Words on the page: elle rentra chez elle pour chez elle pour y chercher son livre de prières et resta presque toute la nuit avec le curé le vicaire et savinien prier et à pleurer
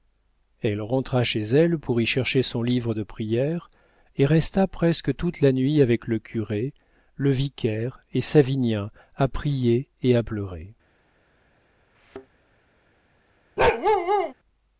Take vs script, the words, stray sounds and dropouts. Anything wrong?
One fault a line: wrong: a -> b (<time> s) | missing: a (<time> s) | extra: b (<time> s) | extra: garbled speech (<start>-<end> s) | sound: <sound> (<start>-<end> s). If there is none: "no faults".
missing: chez elle pour (2.0 s)
extra: à (9.2 s)
sound: thud (11.9-12.3 s)
sound: bark (13.6-14.3 s)